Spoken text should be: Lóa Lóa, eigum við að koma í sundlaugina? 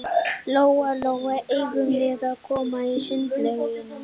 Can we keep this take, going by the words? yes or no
yes